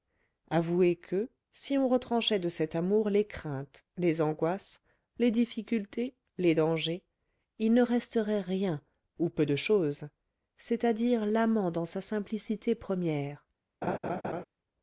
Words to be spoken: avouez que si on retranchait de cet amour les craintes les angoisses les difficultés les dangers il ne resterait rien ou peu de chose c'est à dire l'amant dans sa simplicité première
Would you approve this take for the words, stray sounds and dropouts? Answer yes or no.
no